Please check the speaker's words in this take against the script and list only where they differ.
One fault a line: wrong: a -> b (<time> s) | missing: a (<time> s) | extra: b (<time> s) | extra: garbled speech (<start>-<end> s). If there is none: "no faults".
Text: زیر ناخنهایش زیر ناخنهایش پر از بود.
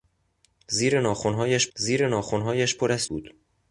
no faults